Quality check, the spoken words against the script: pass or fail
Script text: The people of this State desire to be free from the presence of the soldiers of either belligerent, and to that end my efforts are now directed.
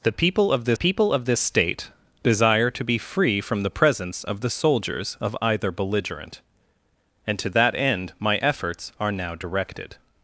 fail